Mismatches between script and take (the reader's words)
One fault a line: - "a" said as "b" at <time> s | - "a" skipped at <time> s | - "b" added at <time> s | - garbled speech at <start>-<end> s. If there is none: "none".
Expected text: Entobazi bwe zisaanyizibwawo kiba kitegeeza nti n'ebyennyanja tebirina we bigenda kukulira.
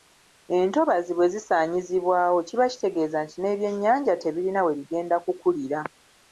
none